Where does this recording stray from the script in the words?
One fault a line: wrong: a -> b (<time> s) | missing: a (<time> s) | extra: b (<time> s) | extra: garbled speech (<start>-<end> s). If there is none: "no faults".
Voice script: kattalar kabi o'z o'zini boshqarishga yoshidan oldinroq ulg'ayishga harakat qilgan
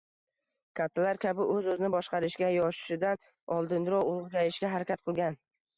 no faults